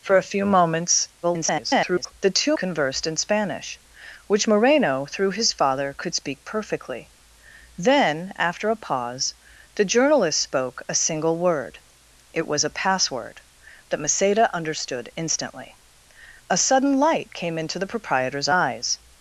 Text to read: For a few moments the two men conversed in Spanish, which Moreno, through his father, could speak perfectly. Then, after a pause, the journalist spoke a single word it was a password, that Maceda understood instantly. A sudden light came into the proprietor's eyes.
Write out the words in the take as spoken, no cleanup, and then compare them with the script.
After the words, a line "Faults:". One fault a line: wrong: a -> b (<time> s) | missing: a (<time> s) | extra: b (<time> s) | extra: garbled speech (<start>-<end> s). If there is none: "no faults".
For a few moments [garbled] the two conversed in Spanish, which Moreno, through his father, could speak perfectly. Then, after a pause, the journalist spoke a single word it was a password, that Maceda understood instantly. A sudden light came into the proprietor's eyes.
Faults:
extra: garbled speech (1.2-2.1 s)
missing: men (2.6 s)